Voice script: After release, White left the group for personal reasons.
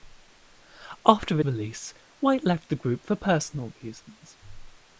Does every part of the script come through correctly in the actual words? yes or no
yes